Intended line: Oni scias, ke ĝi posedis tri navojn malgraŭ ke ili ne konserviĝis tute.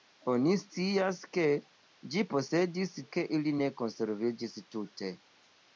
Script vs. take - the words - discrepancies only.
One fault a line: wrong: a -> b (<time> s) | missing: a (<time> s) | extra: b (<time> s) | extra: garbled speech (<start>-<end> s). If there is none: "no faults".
missing: tri navojn malgraŭ (3.0 s)